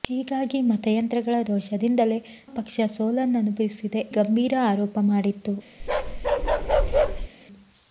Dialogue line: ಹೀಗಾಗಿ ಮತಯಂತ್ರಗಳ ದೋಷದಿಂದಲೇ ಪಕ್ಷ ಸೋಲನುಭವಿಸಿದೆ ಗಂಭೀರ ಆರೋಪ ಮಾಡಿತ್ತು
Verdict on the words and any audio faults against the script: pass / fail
fail